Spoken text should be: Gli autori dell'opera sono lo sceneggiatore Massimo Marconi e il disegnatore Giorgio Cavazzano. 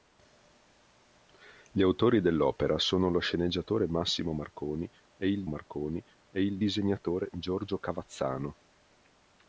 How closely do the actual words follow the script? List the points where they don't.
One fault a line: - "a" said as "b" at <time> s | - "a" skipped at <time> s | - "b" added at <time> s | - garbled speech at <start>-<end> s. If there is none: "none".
- "Marconi e il" added at 5.5 s